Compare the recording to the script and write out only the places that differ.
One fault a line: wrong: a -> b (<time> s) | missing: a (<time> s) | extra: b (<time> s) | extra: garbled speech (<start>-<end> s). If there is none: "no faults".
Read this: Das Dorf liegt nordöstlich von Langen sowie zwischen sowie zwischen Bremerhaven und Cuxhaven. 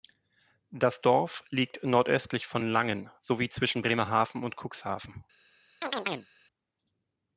missing: sowie zwischen (3.8 s)